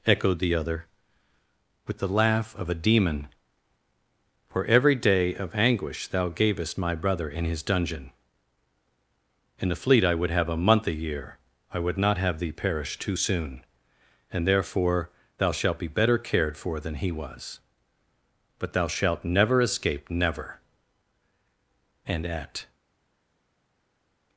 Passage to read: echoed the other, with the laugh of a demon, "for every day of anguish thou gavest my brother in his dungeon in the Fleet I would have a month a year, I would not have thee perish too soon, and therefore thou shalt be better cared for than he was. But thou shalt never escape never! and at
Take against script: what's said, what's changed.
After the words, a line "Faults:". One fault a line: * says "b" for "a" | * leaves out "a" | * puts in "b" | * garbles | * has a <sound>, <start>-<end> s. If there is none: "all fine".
echoed the other, with the laugh of a demon, "for every day of anguish thou gavest my brother in his dungeon in the Fleet I would have a month a year, I would not have thee perish too soon, and therefore thou shalt be better cared for than he was. But thou shalt never escape never! and at
Faults:
all fine